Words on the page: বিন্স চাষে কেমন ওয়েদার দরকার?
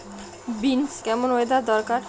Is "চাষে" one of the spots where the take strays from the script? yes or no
yes